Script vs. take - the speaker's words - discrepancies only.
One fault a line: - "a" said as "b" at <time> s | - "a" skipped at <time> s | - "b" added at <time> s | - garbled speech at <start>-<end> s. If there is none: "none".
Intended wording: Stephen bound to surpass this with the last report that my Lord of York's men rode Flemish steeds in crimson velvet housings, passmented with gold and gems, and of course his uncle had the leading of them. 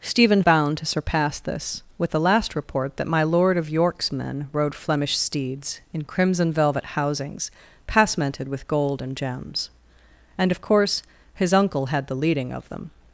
none